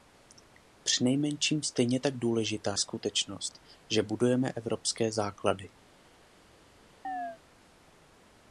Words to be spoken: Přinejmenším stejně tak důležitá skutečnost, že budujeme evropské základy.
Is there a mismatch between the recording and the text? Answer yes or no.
no